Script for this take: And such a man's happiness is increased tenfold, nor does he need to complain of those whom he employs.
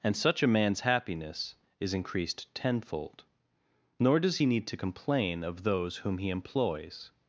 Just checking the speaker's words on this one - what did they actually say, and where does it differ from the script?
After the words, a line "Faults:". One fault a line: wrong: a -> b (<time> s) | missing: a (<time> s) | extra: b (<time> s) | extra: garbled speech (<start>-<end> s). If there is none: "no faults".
And such a man's happiness is increased tenfold, nor does he need to complain of those whom he employs.
Faults:
no faults